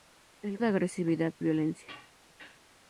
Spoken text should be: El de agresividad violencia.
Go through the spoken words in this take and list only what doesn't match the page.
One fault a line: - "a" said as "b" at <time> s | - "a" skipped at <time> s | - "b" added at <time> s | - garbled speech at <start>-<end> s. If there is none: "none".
none